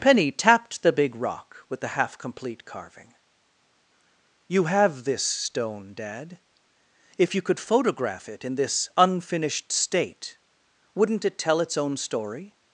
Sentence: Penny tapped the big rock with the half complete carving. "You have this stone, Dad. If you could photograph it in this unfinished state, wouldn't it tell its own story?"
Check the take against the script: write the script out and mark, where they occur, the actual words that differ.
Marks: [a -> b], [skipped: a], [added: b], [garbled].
Penny tapped the big rock with the half complete carving. "You have this stone, Dad. If you could photograph it in this unfinished state, wouldn't it tell its own story?"